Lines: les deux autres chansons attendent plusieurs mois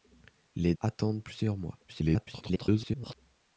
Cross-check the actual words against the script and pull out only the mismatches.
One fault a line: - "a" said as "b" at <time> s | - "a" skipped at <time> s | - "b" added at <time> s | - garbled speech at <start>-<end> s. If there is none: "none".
- "deux autres chansons" skipped at 0.7 s
- garbled speech at 1.9-3.2 s